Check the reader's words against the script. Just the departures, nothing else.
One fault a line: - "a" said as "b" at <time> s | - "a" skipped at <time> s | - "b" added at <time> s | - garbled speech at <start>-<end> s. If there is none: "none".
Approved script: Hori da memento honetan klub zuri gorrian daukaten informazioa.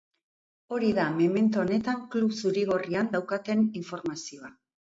none